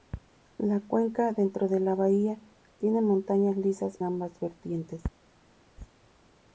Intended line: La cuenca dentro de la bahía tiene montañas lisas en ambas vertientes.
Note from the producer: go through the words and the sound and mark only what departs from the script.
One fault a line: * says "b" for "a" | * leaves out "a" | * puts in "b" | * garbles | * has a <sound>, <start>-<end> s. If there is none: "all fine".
* leaves out "en"